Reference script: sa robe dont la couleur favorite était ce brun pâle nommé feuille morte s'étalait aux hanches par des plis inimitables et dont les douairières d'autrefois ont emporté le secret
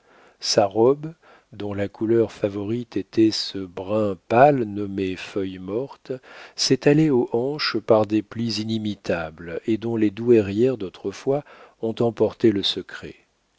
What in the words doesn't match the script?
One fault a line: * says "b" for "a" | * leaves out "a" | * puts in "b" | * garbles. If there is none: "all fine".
all fine